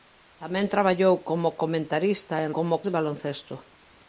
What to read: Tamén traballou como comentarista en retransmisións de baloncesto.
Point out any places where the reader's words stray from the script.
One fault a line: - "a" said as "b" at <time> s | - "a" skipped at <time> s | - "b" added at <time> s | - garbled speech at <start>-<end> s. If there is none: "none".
- "retransmisións" said as "como" at 2.6 s